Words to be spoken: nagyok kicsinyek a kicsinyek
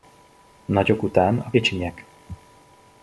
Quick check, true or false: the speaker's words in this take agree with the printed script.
false